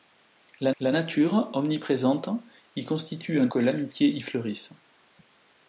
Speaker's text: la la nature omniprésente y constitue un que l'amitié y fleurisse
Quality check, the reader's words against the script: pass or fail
pass